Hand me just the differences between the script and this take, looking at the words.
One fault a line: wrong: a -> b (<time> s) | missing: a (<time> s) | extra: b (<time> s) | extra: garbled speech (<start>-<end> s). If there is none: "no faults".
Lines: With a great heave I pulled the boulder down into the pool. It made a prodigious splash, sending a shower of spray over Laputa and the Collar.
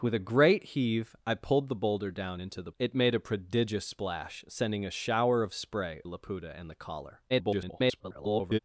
missing: pool (2.7 s)
missing: over (6.0 s)
extra: garbled speech (7.3-8.6 s)